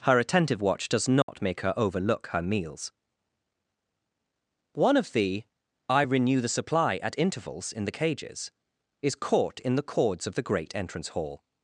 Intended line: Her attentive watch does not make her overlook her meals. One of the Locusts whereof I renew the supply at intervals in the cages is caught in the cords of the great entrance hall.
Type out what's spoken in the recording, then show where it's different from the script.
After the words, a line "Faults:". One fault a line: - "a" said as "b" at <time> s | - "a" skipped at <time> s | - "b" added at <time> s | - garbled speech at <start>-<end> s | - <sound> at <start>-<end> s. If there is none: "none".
Her attentive watch does not make her overlook her meals. One of the I renew the supply at intervals in the cages is caught in the cords of the great entrance hall.
Faults:
- dropout at 1.2-1.3 s
- "Locusts whereof" skipped at 5.4 s